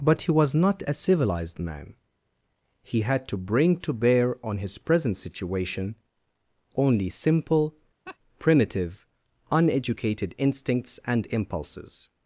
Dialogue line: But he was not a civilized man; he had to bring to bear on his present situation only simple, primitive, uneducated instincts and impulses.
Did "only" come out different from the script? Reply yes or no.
no